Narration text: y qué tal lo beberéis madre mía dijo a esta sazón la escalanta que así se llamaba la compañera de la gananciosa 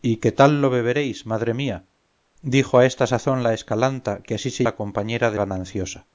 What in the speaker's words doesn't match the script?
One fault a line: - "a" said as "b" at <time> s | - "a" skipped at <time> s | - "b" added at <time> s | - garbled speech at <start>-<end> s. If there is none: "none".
- "llamaba" skipped at 4.7 s
- "la" skipped at 5.4 s